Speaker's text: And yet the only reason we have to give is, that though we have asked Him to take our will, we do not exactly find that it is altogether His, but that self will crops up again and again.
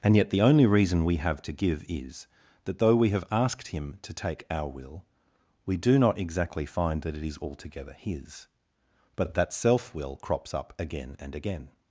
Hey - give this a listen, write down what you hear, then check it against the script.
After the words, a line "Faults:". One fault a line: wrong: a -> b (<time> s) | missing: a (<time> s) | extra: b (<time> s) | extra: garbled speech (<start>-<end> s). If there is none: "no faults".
And yet the only reason we have to give is, that though we have asked Him to take our will, we do not exactly find that it is altogether His, but that self will crops up again and again.
Faults:
no faults